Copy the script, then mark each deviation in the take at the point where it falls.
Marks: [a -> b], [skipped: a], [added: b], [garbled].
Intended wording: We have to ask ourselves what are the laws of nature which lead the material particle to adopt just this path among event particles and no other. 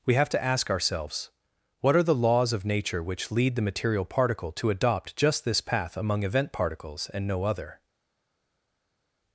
We have to ask ourselves what are the laws of nature which lead the material particle to adopt just this path among event particles and no other.